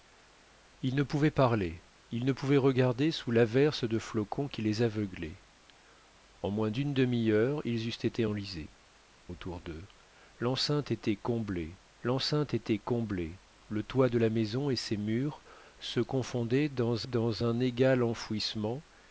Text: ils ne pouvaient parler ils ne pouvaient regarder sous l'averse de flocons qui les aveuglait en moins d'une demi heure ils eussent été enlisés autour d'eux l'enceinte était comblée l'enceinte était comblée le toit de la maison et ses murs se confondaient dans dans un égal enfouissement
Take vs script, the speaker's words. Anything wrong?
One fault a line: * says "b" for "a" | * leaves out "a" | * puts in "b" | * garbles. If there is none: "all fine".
all fine